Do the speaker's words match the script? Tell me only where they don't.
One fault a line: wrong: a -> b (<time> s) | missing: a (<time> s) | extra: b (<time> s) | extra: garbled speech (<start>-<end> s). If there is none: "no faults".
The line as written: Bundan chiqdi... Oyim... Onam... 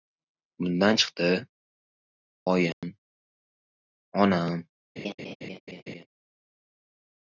no faults